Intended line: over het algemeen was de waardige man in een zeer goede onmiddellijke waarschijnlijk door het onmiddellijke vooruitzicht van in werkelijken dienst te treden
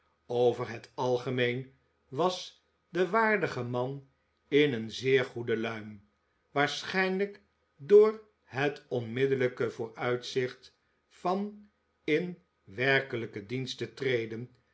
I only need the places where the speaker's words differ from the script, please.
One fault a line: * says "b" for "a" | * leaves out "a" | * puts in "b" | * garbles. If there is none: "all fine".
* says "luim" for "onmiddellijke"